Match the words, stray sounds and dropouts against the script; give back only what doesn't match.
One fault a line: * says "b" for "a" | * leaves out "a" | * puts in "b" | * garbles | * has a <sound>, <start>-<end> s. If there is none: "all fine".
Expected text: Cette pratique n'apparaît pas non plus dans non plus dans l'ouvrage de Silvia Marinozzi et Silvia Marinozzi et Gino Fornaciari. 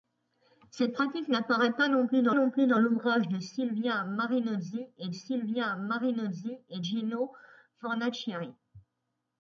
all fine